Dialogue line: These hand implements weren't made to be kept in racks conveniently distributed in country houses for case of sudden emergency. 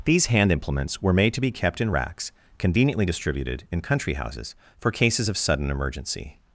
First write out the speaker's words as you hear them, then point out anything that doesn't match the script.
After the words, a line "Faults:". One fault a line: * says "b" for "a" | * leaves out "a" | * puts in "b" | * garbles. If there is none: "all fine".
These hand implements were made to be kept in racks conveniently distributed in country houses for cases of sudden emergency.
Faults:
* says "were" for "weren't"
* says "cases" for "case"